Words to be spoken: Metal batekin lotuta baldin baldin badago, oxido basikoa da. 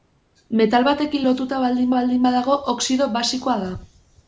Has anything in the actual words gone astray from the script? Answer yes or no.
no